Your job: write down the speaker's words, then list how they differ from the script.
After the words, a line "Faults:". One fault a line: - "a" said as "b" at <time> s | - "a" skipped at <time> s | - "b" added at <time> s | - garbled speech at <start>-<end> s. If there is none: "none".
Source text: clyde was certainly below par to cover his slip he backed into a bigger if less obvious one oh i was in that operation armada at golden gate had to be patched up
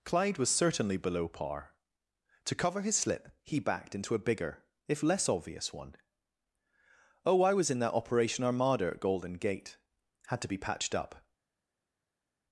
clyde was certainly below par to cover his slip he backed into a bigger if less obvious one oh i was in that operation armada at golden gate had to be patched up
Faults:
none